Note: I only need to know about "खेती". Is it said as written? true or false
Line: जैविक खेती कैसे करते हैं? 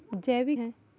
false